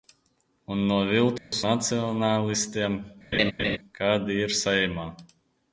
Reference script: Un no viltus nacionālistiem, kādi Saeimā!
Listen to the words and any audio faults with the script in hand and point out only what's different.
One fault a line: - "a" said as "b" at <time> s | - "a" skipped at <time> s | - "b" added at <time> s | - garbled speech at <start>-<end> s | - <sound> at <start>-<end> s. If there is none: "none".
- dropout at 1.4-1.5 s
- laugh at 3.3-3.8 s
- "ir" added at 4.5 s